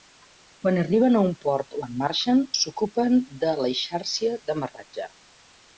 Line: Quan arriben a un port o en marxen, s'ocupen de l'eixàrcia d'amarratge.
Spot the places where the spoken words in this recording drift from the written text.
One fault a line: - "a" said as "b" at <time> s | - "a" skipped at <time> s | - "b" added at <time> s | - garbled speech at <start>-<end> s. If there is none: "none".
none